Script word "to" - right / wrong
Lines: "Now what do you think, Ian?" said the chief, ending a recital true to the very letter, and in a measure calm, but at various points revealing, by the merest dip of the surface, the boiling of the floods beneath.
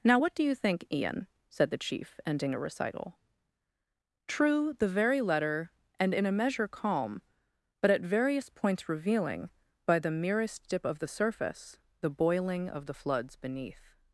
wrong